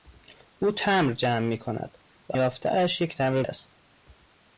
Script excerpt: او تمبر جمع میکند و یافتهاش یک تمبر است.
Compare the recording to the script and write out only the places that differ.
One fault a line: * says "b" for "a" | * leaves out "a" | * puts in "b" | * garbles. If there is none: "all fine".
all fine